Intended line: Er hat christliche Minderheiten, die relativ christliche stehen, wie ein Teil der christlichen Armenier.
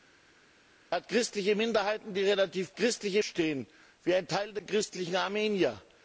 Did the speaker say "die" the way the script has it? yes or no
yes